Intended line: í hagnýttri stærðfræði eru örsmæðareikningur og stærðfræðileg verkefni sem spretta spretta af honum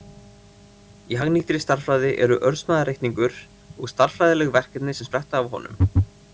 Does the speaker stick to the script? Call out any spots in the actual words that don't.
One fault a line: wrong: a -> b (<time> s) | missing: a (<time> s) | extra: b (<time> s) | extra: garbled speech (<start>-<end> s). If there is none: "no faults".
missing: spretta (5.4 s)